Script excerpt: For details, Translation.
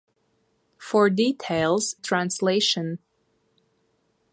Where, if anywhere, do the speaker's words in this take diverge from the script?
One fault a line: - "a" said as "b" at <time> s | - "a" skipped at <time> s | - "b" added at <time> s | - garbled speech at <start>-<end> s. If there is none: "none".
none